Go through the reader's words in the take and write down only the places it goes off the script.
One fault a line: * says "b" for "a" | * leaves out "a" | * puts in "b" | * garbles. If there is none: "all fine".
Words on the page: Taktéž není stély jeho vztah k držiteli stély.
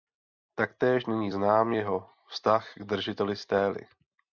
* says "znám" for "stély"